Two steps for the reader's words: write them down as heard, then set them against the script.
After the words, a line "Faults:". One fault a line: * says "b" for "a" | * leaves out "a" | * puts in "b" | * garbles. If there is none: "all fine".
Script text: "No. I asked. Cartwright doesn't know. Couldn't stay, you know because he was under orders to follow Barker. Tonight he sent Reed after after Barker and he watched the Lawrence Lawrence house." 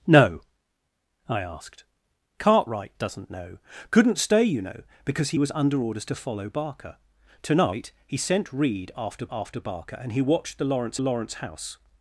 "No. I asked. Cartwright doesn't know. Couldn't stay, you know because he was under orders to follow Barker. Tonight he sent Reed after after Barker and he watched the Lawrence Lawrence house."
Faults:
all fine